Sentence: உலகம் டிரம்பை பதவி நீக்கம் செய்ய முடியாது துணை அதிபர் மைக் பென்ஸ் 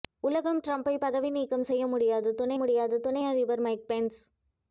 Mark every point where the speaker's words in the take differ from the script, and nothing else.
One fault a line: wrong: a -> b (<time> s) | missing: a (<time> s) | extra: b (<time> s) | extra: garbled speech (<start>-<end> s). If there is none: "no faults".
extra: முடியாது துணை (2.6 s)